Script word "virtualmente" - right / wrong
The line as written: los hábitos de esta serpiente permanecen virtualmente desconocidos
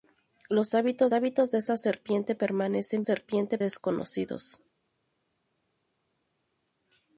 wrong